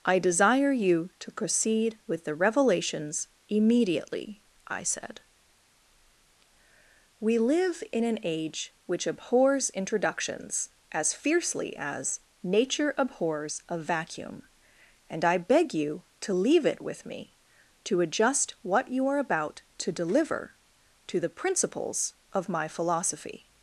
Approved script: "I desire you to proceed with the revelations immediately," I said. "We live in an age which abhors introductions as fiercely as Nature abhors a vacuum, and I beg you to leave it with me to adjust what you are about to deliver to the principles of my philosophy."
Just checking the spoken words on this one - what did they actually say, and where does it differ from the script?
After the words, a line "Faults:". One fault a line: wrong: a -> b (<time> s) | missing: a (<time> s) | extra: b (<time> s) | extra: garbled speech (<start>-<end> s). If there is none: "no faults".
"I desire you to proceed with the revelations immediately," I said. "We live in an age which abhors introductions as fiercely as Nature abhors a vacuum, and I beg you to leave it with me to adjust what you are about to deliver to the principles of my philosophy."
Faults:
no faults